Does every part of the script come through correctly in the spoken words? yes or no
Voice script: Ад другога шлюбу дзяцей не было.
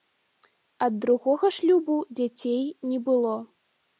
yes